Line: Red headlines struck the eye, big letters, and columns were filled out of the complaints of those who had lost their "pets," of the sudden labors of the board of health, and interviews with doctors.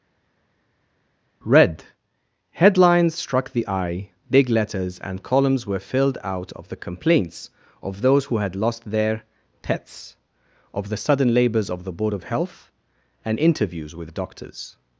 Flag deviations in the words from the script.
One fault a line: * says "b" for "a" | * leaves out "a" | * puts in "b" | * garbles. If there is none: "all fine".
all fine